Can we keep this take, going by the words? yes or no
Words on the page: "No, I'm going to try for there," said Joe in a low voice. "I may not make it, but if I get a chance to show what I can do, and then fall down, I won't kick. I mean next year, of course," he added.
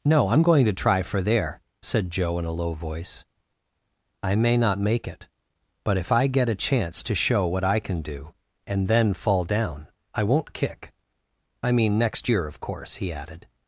yes